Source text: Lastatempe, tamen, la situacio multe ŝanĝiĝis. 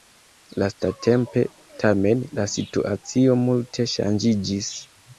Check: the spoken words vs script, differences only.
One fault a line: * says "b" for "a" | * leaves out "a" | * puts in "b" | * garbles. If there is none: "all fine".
all fine